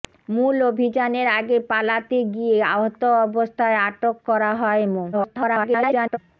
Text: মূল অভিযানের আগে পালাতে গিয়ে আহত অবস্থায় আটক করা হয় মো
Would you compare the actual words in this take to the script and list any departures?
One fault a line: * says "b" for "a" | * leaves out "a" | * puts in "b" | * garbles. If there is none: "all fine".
* garbles